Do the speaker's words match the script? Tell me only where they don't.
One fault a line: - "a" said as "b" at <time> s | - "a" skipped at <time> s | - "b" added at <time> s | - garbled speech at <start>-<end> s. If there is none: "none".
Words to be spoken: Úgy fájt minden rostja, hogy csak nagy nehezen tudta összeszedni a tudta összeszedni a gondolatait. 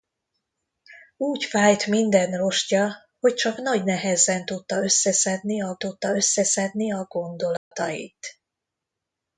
none